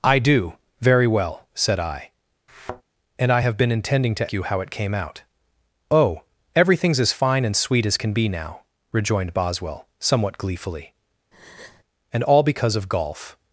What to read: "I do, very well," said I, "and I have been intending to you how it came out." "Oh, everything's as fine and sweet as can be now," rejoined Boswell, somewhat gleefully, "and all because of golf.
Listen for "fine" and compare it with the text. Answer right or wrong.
right